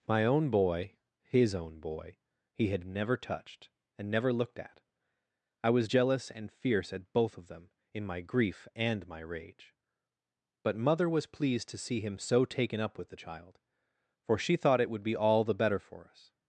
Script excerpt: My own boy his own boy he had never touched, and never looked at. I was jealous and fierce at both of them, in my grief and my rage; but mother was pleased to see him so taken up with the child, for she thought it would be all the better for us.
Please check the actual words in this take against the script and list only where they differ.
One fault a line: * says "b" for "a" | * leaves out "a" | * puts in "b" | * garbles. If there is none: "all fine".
all fine